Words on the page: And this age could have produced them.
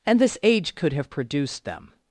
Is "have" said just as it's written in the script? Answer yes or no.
yes